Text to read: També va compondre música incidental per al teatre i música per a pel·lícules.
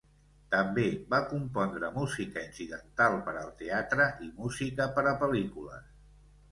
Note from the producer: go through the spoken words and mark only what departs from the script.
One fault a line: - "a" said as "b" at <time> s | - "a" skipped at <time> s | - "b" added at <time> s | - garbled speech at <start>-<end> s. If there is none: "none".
none